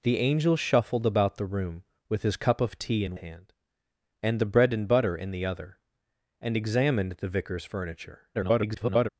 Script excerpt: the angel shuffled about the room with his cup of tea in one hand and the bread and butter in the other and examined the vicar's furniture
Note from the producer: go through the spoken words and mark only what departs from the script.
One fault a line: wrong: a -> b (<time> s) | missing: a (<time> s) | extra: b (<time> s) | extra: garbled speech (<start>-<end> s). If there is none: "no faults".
missing: one (3.2 s)
extra: garbled speech (8.3-9.1 s)